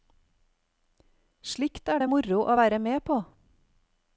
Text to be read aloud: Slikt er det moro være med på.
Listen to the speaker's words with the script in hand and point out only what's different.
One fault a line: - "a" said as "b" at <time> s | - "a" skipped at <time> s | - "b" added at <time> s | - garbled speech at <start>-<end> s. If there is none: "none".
- "å" added at 2.4 s